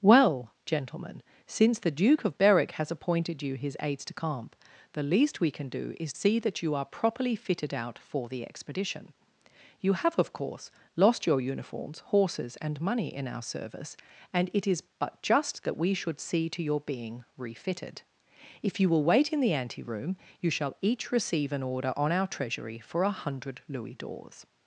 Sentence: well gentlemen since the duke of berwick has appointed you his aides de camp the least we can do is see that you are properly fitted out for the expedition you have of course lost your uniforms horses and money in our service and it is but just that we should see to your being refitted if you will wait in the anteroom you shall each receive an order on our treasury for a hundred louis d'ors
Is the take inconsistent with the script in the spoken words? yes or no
no